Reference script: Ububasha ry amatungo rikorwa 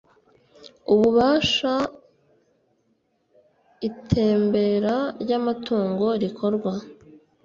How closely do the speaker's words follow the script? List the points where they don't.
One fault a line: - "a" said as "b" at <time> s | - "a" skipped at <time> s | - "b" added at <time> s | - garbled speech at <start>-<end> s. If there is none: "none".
- "itembera" added at 3.9 s